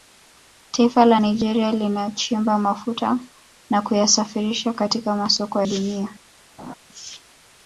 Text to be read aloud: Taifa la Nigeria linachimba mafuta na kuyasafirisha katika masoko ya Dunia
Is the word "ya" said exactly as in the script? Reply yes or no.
no